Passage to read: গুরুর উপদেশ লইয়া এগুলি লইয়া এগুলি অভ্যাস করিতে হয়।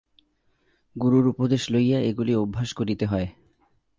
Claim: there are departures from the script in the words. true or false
true